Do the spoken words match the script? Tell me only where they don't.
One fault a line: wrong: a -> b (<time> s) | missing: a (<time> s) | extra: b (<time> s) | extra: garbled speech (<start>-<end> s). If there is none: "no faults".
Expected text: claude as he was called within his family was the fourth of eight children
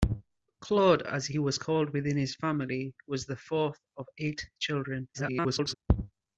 extra: garbled speech (5.1-5.7 s)